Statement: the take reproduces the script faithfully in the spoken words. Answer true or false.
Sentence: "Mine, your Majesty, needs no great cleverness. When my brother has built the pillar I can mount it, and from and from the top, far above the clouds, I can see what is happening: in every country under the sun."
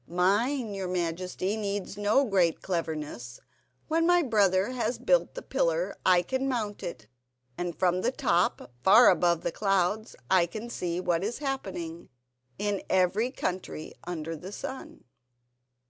false